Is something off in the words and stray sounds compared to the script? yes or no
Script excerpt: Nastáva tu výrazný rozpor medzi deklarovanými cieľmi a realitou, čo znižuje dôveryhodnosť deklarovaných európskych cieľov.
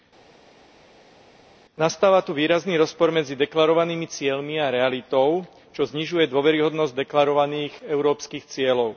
no